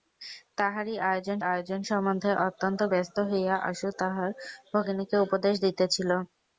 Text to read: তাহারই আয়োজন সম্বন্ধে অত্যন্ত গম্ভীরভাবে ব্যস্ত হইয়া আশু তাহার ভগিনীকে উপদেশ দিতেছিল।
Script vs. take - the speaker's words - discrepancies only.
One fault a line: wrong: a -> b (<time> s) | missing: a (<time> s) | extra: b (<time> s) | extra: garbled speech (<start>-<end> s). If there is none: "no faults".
extra: আয়োজন (1.5 s)
missing: গম্ভীরভাবে (2.8 s)